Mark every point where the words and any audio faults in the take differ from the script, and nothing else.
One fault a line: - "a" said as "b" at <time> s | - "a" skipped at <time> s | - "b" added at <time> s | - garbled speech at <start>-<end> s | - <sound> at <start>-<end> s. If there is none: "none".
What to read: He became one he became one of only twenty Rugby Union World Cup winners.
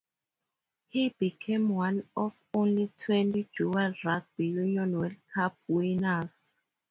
- "he became one" skipped at 2.1 s
- "dual" added at 3.6 s